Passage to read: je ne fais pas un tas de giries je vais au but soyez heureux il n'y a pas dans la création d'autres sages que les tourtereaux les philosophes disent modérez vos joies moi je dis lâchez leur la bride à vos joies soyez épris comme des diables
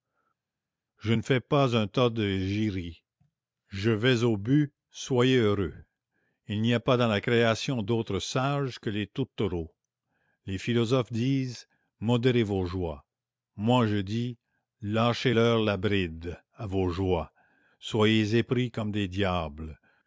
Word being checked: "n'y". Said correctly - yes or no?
yes